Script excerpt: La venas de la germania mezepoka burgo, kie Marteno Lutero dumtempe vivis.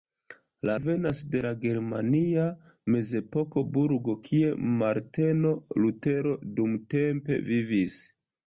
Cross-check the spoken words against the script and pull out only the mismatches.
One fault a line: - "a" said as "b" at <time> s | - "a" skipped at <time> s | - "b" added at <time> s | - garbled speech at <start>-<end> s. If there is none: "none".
none